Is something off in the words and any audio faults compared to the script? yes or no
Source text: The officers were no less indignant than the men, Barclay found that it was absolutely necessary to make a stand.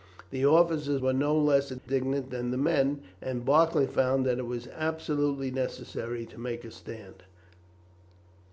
yes